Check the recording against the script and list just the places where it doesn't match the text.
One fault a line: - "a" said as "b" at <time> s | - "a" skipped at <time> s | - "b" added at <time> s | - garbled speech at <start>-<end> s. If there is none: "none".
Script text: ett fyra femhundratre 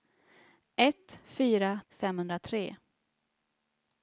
none